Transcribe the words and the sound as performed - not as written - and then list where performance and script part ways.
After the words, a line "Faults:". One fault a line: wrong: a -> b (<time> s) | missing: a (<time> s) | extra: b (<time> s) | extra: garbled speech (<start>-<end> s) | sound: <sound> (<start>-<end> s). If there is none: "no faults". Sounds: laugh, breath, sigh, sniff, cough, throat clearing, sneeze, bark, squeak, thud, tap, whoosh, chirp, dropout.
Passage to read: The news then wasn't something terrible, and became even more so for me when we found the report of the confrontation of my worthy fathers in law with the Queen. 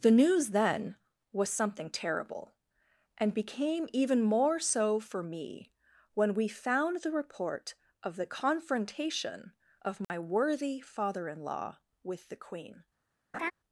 The news then was something terrible, and became even more so for me when we found the report of the confrontation of my worthy father in law with the Queen.
Faults:
wrong: wasn't -> was (1.3 s)
sound: dropout (10.0-10.1 s)
wrong: fathers -> father (10.8 s)
sound: laugh (13.3-13.5 s)